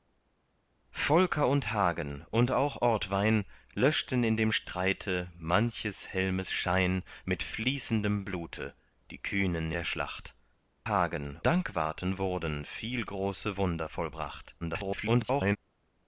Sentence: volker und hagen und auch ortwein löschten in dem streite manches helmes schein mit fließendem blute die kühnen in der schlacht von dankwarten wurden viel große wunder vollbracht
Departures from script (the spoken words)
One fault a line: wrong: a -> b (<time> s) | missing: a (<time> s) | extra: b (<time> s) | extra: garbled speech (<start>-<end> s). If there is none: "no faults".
missing: in (9.7 s)
wrong: von -> hagen (10.9 s)
extra: garbled speech (14.6-15.6 s)